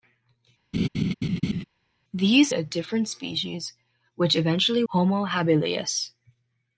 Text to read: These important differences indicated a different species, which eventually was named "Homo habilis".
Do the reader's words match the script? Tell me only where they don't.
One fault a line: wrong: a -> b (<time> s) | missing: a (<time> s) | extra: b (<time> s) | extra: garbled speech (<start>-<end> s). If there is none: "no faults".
missing: important differences indicated (2.5 s)
missing: was named (4.8 s)